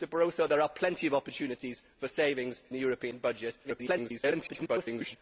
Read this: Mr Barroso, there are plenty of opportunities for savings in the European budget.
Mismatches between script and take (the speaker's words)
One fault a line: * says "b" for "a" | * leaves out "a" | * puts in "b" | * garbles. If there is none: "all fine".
* leaves out "in"
* garbles